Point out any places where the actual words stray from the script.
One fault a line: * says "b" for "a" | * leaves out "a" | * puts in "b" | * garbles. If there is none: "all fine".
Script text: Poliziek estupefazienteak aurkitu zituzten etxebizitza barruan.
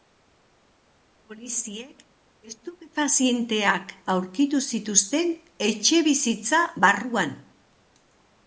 all fine